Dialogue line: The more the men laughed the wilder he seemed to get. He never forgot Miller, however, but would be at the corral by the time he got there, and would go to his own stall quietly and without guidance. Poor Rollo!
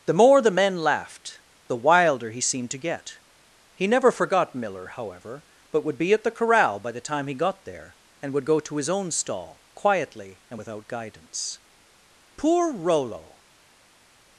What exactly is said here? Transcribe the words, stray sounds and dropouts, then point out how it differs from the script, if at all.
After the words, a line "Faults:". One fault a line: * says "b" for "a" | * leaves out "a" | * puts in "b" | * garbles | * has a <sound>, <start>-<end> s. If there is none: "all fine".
The more the men laughed the wilder he seemed to get. He never forgot Miller, however, but would be at the corral by the time he got there, and would go to his own stall quietly and without guidance. Poor Rollo!
Faults:
all fine